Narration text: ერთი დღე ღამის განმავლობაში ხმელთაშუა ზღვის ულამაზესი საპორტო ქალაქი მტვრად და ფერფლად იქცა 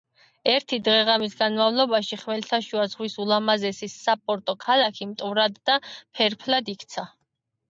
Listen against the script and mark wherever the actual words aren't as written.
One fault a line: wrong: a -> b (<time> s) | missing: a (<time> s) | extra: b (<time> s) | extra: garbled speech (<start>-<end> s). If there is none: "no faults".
no faults